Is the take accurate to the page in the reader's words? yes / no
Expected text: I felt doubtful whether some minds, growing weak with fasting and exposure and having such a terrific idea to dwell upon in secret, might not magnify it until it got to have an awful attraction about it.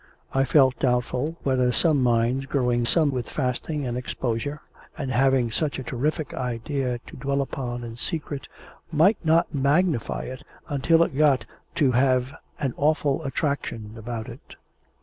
no